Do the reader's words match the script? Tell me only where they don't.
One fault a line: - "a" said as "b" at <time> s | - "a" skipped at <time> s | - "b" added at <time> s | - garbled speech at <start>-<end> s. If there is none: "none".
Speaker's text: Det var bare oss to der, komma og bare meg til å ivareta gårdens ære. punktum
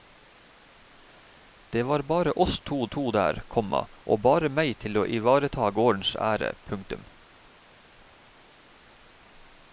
- "to" added at 2.9 s